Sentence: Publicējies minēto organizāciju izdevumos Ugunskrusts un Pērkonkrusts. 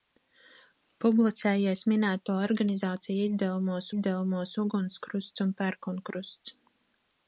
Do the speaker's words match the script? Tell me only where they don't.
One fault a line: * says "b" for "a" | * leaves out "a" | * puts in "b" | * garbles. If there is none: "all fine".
* puts in "izdevumos"